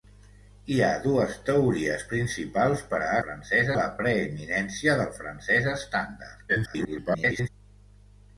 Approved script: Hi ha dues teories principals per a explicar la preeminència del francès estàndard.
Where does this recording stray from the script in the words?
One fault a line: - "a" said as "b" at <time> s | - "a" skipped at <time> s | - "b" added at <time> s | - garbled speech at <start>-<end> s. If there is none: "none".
- "explicar" said as "francès" at 3.2 s
- garbled speech at 6.5-7.5 s